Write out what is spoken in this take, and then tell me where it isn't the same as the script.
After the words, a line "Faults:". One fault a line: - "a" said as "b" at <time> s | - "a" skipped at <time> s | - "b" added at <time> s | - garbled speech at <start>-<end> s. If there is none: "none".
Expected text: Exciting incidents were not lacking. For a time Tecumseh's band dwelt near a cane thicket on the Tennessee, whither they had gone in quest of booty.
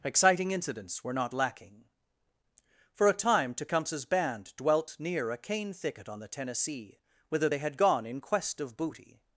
Exciting incidents were not lacking. For a time Tecumseh's band dwelt near a cane thicket on the Tennessee, whither they had gone in quest of booty.
Faults:
none